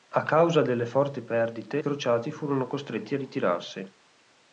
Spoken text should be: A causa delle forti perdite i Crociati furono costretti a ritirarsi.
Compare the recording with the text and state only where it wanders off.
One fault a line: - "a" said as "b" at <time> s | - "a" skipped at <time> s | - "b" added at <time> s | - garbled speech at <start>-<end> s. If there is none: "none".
- "i" skipped at 1.8 s